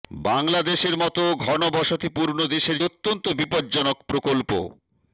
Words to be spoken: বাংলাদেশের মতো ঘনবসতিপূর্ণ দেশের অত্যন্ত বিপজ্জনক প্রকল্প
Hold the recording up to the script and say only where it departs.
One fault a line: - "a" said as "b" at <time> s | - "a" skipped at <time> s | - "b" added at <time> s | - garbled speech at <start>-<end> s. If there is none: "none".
none